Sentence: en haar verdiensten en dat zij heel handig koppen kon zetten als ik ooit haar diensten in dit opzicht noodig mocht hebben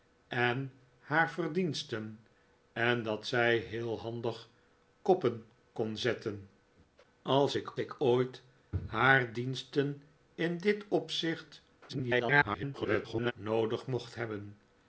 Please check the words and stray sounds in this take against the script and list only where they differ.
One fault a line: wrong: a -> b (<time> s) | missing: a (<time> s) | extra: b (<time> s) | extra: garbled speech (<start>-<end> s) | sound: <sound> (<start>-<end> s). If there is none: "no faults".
extra: ik (7.8 s)
extra: garbled speech (11.9-13.3 s)